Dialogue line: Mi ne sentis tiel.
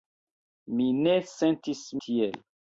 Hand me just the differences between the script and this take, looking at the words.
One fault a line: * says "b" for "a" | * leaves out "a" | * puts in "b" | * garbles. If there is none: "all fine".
all fine